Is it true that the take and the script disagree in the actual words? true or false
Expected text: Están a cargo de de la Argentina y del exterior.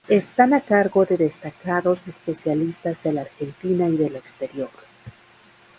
true